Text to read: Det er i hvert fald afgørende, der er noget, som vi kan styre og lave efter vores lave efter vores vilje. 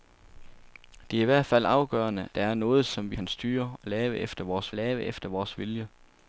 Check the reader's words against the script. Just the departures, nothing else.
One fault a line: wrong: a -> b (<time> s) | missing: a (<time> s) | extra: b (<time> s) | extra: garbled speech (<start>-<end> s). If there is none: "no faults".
no faults